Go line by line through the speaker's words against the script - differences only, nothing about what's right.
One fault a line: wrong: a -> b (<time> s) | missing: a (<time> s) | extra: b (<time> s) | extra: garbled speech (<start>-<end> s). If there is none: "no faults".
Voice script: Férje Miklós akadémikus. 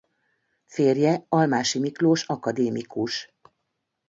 extra: Almási (1.3 s)